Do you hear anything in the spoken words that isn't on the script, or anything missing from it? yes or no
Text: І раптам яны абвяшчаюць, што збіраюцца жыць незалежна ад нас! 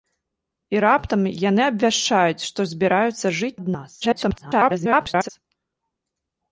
yes